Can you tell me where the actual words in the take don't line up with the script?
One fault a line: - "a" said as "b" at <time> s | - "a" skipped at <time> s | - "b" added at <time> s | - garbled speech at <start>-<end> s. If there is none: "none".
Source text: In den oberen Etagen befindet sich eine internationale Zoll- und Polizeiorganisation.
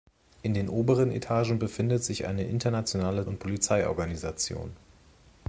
- "Zoll" skipped at 3.3 s